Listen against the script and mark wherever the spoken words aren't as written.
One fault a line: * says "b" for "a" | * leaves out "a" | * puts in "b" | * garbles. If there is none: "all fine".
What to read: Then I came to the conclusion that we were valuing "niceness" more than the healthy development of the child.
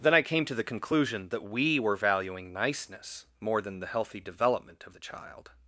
all fine